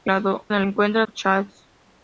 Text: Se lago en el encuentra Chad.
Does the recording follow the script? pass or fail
pass